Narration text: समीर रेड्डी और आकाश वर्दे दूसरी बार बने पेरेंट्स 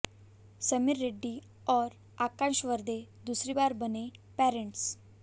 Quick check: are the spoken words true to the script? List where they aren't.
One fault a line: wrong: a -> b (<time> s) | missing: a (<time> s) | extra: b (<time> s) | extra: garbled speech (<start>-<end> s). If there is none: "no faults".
no faults